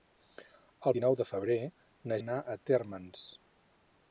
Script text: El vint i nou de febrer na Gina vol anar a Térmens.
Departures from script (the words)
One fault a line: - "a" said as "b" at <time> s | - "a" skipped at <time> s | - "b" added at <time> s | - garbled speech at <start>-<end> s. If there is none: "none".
- "vint" skipped at 0.9 s
- "Gina vol" skipped at 2.2 s